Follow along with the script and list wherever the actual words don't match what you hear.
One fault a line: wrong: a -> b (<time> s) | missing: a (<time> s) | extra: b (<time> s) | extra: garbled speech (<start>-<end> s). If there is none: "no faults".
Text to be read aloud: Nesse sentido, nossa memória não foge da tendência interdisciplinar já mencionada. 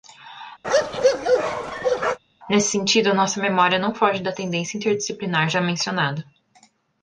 no faults